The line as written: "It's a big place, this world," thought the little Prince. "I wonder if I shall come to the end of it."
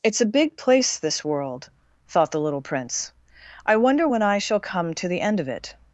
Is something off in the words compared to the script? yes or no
yes